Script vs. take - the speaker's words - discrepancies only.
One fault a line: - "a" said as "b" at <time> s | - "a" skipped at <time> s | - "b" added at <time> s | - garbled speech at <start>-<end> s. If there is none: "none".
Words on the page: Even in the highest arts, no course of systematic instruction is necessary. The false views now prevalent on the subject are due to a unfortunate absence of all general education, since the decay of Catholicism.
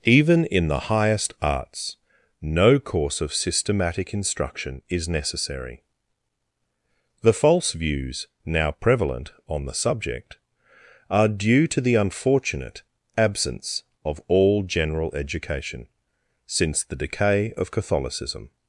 - "a" said as "the" at 11.8 s